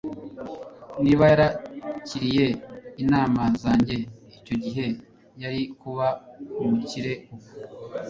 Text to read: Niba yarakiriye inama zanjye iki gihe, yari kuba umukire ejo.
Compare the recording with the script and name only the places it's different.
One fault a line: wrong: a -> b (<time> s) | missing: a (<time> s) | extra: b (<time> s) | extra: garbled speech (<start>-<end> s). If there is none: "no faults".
wrong: iki -> icyo (4.4 s)
wrong: ejo -> ubu (7.3 s)